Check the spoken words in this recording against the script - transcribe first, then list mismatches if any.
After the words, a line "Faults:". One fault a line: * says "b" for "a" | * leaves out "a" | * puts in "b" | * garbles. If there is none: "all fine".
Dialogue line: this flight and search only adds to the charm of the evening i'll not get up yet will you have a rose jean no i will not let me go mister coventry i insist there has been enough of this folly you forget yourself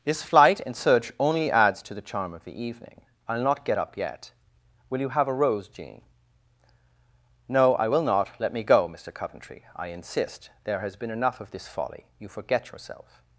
this flight and search only adds to the charm of the evening i'll not get up yet will you have a rose jean no i will not let me go mister coventry i insist there has been enough of this folly you forget yourself
Faults:
all fine